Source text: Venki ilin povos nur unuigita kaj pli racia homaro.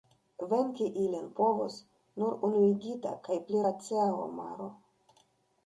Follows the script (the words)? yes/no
yes